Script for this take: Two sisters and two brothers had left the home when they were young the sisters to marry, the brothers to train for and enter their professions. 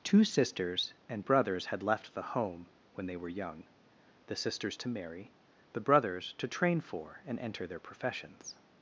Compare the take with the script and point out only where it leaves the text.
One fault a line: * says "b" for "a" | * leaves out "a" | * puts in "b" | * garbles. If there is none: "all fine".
* leaves out "two"